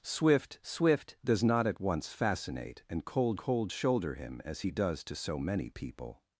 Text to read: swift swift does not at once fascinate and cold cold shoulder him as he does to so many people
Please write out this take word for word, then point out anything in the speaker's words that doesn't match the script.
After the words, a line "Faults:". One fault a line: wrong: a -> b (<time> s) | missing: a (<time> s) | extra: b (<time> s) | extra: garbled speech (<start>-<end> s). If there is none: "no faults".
swift swift does not at once fascinate and cold cold shoulder him as he does to so many people
Faults:
no faults